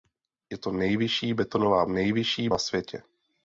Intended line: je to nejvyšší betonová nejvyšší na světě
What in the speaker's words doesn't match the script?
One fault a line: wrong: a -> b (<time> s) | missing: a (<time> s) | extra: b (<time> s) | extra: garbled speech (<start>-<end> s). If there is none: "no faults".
no faults